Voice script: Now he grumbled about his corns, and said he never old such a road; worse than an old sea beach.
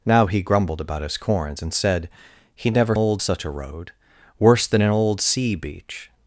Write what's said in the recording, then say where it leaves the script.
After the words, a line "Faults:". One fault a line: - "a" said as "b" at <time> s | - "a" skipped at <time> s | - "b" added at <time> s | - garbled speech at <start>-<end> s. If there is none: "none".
Now he grumbled about his corns, and said he never old such a road; worse than an old sea beach.
Faults:
none